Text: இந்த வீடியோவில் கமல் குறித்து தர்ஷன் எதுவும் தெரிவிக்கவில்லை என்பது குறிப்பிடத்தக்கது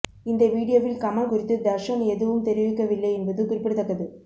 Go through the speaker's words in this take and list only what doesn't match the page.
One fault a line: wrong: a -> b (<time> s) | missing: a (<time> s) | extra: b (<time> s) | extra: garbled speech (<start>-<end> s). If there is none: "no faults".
no faults